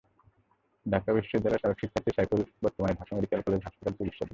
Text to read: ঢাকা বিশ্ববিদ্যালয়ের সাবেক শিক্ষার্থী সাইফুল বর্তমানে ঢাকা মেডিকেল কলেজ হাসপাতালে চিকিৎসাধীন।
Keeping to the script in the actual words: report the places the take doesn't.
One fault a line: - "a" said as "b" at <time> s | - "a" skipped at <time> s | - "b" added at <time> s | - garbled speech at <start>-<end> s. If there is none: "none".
none